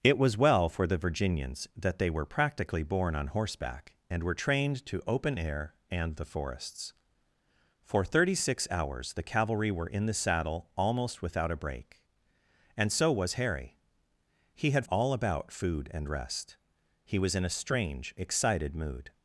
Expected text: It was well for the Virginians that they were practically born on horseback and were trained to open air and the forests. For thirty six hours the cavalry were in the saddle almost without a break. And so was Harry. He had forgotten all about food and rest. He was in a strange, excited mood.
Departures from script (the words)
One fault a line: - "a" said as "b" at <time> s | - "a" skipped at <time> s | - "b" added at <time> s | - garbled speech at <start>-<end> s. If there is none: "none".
- "forgotten" skipped at 14.9 s